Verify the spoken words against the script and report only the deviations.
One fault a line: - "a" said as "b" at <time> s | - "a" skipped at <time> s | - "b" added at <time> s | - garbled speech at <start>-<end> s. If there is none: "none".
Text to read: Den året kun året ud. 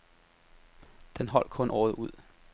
- "året" said as "holdt" at 1.3 s